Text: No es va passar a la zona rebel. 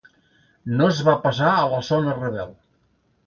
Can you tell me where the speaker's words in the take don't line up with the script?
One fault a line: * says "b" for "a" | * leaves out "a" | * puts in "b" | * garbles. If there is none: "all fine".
all fine